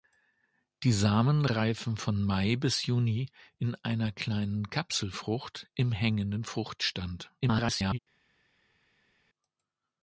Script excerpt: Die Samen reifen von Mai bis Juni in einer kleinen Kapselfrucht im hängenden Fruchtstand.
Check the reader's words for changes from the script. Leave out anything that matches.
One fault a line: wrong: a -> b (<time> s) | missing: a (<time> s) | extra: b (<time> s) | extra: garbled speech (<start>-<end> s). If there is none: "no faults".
extra: garbled speech (7.4-8.0 s)